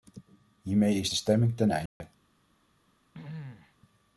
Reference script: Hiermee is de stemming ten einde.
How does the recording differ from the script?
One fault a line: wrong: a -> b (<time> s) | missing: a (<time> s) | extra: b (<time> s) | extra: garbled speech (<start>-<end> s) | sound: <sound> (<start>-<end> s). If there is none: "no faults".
sound: dropout (1.9-2.0 s)
sound: throat clearing (3.1-3.8 s)